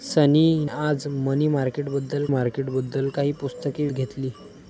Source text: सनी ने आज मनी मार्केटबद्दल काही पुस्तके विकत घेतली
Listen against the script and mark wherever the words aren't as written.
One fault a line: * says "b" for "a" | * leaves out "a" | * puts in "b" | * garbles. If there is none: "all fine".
* leaves out "ने"
* puts in "मार्केटबद्दल"
* leaves out "विकत"